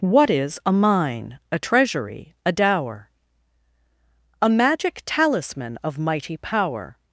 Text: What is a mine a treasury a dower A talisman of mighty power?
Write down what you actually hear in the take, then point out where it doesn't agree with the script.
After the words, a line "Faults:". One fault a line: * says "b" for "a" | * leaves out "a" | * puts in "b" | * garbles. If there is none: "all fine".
What is a mine a treasury a dower A magic talisman of mighty power?
Faults:
* puts in "magic"